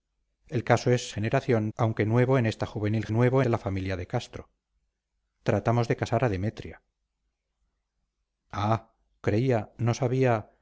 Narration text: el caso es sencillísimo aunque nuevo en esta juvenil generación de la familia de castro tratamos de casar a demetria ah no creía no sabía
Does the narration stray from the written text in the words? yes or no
yes